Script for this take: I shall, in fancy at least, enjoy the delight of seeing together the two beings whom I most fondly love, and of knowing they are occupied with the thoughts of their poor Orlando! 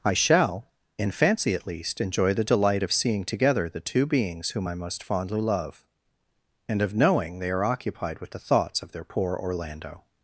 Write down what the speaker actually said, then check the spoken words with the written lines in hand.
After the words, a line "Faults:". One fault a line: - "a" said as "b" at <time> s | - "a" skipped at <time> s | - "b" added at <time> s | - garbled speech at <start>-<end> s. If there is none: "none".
I shall, in fancy at least, enjoy the delight of seeing together the two beings whom I most fondly love, and of knowing they are occupied with the thoughts of their poor Orlando!
Faults:
none